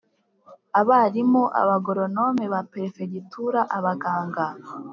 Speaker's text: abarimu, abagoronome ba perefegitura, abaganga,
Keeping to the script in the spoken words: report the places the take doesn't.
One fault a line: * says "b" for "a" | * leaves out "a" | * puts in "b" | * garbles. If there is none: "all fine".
all fine